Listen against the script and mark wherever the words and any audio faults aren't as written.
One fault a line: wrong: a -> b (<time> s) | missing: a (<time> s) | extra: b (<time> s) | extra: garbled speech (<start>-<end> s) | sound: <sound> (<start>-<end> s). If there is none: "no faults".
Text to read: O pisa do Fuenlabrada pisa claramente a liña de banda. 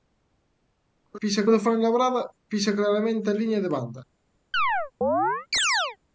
sound: chirp (4.5-6.0 s)